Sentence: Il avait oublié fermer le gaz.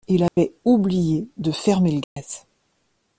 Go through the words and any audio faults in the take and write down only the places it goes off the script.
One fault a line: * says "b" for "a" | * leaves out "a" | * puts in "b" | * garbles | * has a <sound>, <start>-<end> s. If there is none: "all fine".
* has a dropout, 0.3-0.4 s
* puts in "de"
* has a dropout, 2.0-2.2 s